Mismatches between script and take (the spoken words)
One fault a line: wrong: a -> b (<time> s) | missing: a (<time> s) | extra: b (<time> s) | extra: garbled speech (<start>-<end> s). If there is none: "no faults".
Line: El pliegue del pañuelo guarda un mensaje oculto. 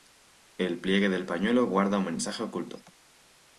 no faults